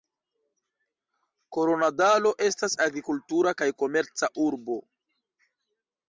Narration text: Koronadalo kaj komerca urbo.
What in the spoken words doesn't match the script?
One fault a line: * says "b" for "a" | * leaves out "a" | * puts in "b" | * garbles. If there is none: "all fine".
* puts in "estas agrikultura"